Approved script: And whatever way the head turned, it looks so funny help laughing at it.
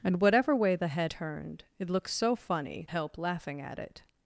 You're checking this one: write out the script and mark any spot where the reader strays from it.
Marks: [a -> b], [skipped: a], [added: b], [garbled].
And whatever way the head turned, it looks so funny help laughing at it.